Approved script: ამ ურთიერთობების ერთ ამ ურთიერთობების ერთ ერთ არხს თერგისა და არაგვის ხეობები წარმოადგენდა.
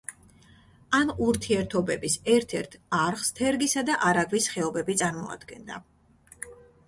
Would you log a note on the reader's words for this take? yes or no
yes